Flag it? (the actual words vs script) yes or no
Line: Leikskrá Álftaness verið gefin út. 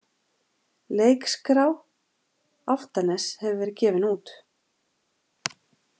yes